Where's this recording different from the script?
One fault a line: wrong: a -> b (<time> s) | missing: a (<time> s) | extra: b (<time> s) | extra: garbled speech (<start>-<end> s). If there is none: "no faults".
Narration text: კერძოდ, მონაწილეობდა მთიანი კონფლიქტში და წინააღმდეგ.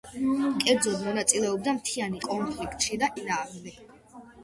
no faults